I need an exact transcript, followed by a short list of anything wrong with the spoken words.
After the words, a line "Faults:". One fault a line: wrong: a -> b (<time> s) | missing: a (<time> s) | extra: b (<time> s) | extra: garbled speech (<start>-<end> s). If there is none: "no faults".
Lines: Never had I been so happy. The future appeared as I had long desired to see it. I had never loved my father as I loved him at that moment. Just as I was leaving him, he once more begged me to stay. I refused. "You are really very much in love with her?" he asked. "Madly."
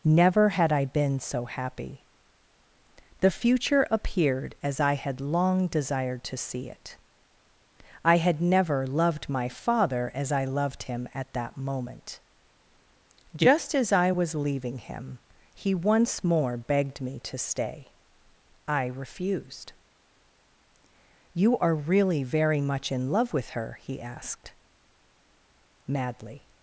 Never had I been so happy. The future appeared as I had long desired to see it. I had never loved my father as I loved him at that moment. Just as I was leaving him, he once more begged me to stay. I refused. "You are really very much in love with her?" he asked. "Madly."
Faults:
no faults